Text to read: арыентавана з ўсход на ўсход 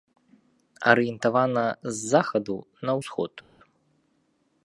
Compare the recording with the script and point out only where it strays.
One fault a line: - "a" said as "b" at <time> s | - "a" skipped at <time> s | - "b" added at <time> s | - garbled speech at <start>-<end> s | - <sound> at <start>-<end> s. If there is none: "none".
- "ўсход" said as "захаду" at 2.1 s